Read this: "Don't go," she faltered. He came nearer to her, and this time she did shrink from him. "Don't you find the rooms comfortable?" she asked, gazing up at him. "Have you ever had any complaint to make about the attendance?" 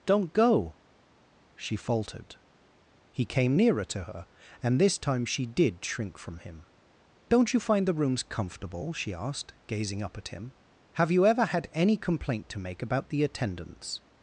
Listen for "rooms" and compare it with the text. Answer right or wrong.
right